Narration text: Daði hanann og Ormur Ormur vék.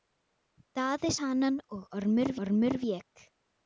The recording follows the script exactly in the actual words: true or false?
true